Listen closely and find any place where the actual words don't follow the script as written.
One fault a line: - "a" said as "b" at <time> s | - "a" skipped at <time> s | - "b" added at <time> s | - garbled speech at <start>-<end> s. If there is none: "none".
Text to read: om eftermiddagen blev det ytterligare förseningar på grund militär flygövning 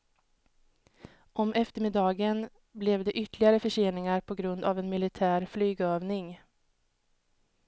- "av en" added at 4.6 s